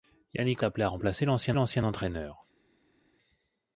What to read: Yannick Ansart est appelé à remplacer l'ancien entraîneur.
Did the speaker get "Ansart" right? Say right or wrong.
wrong